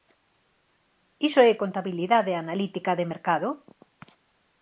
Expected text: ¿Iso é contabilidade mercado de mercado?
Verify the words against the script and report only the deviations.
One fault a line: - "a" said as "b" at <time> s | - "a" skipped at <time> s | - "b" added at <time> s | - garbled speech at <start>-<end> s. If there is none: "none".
- "mercado" said as "analítica" at 2.4 s